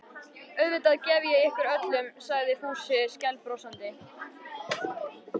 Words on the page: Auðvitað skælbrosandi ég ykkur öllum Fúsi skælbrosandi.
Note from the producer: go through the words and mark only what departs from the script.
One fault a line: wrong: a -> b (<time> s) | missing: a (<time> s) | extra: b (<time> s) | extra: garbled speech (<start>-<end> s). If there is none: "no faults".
wrong: skælbrosandi -> gef (1.1 s)
extra: sagði (2.3 s)